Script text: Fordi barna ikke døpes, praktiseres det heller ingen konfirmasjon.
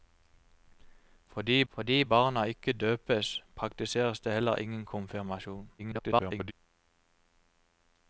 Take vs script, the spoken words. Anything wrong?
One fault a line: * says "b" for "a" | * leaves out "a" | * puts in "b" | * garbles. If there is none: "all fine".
* puts in "fordi"
* garbles